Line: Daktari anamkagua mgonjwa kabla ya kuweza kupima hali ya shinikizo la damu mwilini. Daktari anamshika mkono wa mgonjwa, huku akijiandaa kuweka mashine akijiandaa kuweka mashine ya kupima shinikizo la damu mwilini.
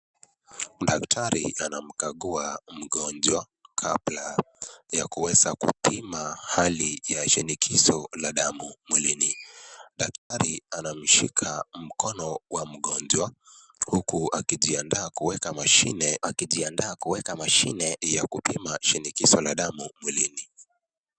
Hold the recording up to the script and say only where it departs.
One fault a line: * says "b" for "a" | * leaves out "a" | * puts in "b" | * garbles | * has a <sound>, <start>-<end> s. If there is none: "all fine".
* has a dropout, 10.2-10.3 s